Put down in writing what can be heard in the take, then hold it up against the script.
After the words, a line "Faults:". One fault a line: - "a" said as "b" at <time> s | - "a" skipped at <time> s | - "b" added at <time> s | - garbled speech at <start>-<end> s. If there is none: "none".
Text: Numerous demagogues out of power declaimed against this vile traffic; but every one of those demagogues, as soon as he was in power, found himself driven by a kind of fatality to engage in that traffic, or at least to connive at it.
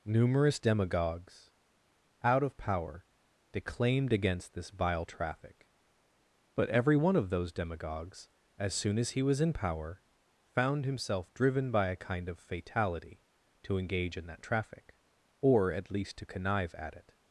Numerous demagogues out of power declaimed against this vile traffic; but every one of those demagogues, as soon as he was in power, found himself driven by a kind of fatality to engage in that traffic, or at least to connive at it.
Faults:
none